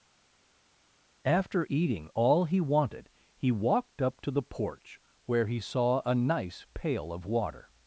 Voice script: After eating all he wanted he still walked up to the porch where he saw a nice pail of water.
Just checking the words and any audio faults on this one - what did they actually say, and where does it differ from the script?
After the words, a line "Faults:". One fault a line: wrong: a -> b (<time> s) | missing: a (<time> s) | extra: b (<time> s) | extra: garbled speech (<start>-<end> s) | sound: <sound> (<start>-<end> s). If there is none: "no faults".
After eating all he wanted he walked up to the porch where he saw a nice pail of water.
Faults:
missing: still (3.5 s)